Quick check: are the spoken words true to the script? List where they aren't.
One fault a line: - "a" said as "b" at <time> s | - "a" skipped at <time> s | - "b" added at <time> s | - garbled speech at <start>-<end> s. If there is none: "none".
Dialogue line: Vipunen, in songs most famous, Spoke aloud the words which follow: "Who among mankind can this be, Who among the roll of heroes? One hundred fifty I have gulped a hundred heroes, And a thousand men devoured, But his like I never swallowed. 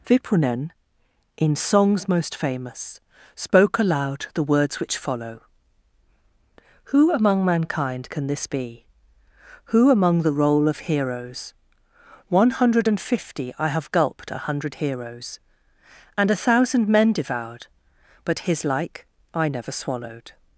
- "and" added at 12.9 s